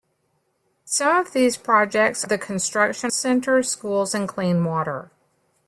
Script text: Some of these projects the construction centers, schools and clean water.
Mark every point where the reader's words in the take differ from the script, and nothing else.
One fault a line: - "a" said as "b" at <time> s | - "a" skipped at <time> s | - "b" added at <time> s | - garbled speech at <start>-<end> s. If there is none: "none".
none